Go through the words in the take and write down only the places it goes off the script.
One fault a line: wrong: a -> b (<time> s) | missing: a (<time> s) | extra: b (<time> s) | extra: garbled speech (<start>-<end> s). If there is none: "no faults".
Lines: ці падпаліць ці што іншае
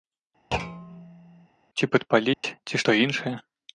no faults